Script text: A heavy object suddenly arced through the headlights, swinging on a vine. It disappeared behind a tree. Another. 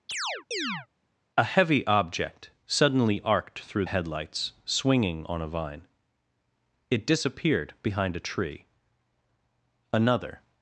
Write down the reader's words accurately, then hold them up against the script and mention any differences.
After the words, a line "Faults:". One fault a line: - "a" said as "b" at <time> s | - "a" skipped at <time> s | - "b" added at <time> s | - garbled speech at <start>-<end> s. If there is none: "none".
A heavy object suddenly arced through headlights, swinging on a vine. It disappeared behind a tree. Another.
Faults:
- "the" skipped at 3.9 s